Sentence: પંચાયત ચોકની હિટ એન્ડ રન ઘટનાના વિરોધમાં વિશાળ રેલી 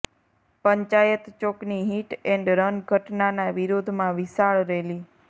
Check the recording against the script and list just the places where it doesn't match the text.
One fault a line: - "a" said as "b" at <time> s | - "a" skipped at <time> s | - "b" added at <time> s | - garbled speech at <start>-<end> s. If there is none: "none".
none